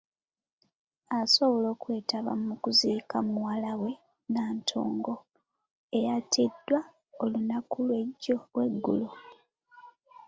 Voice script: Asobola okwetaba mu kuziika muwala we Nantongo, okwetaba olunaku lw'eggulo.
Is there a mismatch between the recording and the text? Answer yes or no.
yes